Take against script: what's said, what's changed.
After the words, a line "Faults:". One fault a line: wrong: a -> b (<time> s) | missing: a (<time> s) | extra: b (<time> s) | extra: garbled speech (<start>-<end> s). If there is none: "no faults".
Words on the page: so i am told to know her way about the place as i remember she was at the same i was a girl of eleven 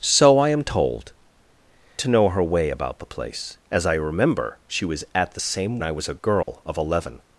so i am told to know her way about the place as i remember she was at the same i was a girl of eleven
Faults:
no faults